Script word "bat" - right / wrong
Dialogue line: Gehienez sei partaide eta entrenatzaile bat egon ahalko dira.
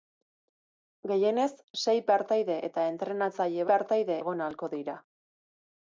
wrong